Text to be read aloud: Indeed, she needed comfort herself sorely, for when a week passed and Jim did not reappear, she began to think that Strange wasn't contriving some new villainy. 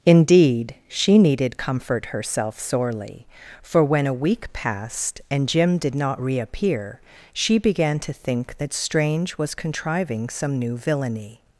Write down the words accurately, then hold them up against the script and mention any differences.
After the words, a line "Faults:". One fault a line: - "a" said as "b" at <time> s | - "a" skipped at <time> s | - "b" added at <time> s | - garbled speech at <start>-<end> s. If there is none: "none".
Indeed, she needed comfort herself sorely, for when a week passed and Jim did not reappear, she began to think that Strange was contriving some new villainy.
Faults:
- "wasn't" said as "was" at 9.4 s